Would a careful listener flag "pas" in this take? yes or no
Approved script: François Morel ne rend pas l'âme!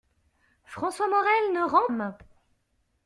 yes